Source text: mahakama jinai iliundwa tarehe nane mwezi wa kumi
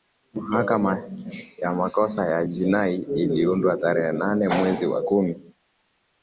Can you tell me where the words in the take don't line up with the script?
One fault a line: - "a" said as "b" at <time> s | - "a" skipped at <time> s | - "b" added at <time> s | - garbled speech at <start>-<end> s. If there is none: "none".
- "ya makosa ya" added at 1.6 s